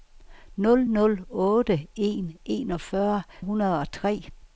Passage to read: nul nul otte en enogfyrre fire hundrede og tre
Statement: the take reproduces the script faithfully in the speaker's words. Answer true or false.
false